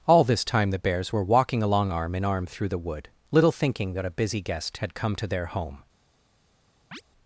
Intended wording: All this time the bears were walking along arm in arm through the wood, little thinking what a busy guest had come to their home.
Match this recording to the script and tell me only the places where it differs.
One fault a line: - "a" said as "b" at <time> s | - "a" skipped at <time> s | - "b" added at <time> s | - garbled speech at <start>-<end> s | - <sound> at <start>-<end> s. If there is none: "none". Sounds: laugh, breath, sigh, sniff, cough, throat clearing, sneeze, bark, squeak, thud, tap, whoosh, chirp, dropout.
- "what" said as "that" at 3.9 s
- chirp at 6.9-7.0 s